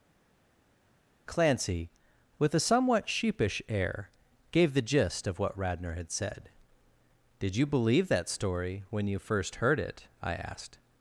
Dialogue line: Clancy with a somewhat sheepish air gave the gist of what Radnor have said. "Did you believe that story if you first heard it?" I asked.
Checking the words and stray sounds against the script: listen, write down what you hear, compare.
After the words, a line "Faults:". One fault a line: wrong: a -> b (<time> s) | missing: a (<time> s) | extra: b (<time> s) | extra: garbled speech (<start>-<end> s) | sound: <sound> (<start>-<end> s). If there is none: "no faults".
Clancy with a somewhat sheepish air gave the gist of what Radnor had said. "Did you believe that story when you first heard it?" I asked.
Faults:
wrong: have -> had (5.9 s)
wrong: if -> when (8.9 s)